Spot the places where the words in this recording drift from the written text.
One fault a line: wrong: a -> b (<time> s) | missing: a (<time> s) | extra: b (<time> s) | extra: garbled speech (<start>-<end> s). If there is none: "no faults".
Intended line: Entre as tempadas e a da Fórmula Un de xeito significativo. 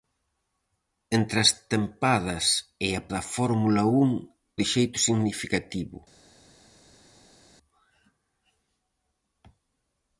no faults